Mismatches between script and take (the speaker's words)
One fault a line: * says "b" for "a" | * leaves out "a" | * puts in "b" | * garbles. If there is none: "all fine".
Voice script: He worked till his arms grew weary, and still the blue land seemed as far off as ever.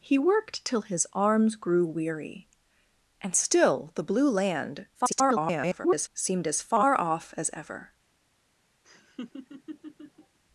* garbles